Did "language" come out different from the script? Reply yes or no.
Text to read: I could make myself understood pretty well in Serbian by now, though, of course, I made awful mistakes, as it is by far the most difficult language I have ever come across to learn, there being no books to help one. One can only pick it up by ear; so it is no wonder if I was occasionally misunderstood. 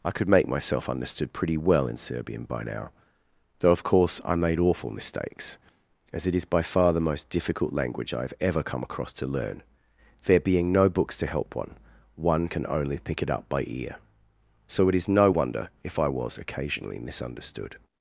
no